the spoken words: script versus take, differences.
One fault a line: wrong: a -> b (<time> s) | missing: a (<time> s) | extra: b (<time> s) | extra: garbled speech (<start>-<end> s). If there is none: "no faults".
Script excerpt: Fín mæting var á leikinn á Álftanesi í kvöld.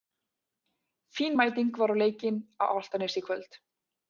no faults